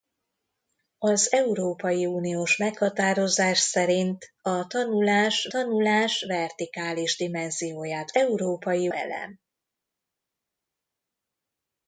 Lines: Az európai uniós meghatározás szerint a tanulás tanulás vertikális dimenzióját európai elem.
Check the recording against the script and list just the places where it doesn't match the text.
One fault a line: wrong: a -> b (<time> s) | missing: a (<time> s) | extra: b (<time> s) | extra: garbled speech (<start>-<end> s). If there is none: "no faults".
no faults